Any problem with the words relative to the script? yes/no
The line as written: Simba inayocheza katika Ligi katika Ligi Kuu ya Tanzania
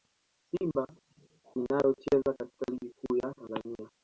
yes